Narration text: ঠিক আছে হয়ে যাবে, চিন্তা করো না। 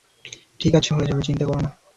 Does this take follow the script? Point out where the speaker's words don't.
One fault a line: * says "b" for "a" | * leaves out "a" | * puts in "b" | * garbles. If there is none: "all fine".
all fine